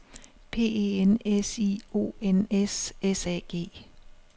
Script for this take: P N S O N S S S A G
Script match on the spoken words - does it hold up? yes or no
no